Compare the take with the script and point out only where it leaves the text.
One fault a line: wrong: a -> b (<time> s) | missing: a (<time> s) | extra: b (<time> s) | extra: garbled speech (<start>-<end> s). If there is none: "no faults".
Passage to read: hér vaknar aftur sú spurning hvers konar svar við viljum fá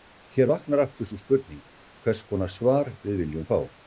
no faults